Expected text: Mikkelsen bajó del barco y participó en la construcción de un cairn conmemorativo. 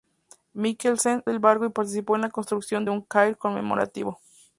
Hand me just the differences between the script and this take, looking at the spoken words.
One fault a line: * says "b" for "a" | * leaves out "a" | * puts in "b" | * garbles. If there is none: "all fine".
* leaves out "bajó"